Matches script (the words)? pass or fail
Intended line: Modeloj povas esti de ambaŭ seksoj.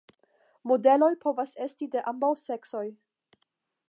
pass